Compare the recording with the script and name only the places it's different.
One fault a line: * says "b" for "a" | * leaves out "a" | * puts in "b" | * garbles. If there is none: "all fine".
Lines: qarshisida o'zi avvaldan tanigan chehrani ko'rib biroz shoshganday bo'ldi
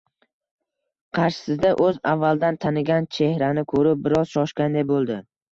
all fine